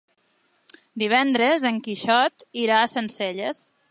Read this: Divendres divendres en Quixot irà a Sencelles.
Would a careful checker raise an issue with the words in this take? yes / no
yes